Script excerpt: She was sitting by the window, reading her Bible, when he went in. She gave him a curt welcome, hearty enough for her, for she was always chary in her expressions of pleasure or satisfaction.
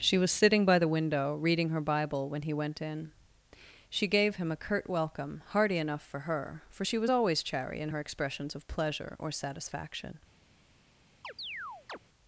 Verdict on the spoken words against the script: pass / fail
pass